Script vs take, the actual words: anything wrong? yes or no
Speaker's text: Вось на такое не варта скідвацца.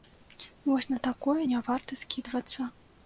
no